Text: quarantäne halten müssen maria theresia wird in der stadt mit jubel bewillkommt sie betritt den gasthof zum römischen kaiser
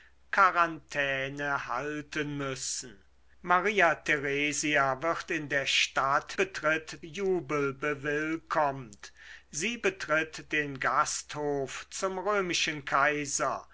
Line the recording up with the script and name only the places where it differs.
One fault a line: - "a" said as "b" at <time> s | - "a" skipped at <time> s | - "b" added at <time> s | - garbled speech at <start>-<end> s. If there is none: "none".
- "mit" said as "betritt" at 6.3 s